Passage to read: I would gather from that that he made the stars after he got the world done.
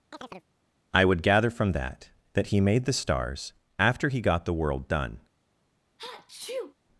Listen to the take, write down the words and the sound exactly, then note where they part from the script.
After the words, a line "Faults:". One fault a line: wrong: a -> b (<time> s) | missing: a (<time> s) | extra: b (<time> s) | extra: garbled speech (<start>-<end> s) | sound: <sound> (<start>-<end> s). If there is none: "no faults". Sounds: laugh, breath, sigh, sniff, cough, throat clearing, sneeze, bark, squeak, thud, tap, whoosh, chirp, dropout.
I would gather from that that he made the stars after he got the world done.
Faults:
sound: chirp (0.1-0.5 s)
sound: sneeze (6.0-6.7 s)